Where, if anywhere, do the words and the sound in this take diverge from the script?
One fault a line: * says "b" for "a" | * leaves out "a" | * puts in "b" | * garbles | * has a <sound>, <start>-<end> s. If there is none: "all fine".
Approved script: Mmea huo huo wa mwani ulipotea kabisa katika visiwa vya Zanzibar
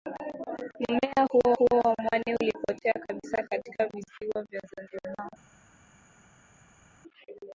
all fine